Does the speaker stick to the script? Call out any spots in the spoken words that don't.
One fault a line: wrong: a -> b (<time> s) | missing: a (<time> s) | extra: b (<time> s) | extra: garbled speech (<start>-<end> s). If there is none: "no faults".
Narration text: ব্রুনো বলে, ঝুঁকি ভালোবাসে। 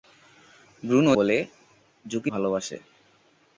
no faults